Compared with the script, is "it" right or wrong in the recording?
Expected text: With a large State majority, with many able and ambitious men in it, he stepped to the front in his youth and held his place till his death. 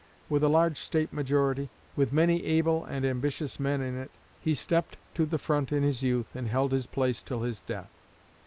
right